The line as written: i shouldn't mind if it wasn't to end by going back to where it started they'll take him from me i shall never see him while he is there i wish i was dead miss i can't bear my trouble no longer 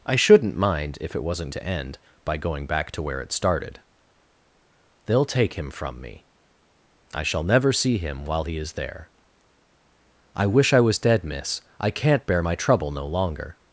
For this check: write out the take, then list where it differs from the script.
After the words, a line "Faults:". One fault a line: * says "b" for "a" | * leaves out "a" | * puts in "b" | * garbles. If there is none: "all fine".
i shouldn't mind if it wasn't to end by going back to where it started they'll take him from me i shall never see him while he is there i wish i was dead miss i can't bear my trouble no longer
Faults:
all fine